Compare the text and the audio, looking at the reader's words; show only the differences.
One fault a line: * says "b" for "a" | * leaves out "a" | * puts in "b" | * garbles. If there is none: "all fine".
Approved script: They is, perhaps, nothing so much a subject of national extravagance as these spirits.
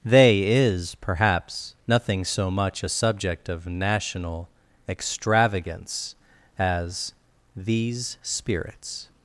all fine